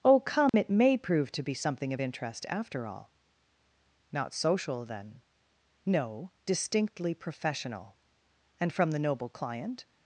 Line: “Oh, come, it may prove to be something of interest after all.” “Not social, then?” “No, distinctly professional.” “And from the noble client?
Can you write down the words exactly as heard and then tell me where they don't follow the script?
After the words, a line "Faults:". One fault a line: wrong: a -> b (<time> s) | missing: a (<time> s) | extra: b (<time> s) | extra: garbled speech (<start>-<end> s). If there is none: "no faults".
“Oh, come, it may prove to be something of interest after all.” “Not social, then?” “No, distinctly professional.” “And from the noble client?
Faults:
no faults